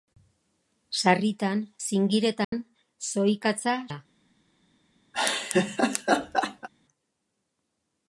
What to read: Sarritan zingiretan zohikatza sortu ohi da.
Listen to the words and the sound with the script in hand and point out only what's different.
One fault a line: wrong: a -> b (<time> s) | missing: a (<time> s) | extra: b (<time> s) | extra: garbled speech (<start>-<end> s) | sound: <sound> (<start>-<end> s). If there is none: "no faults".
sound: dropout (2.4-2.5 s)
missing: sortu ohi (3.8 s)
sound: laugh (5.1-6.7 s)